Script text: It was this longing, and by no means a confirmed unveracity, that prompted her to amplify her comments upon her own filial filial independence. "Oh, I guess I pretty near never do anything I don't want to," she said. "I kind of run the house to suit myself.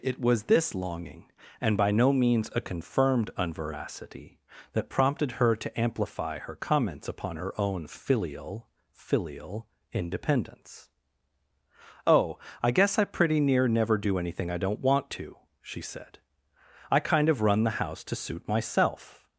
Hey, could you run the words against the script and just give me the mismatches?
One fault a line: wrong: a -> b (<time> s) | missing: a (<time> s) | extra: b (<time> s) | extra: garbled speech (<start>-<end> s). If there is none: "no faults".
no faults